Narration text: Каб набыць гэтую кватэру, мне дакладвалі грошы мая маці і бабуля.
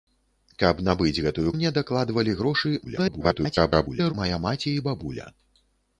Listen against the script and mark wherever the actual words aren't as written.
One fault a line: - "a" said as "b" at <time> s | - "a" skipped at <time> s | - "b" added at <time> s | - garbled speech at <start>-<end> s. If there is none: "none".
- "кватэру" skipped at 1.5 s
- garbled speech at 2.8-4.1 s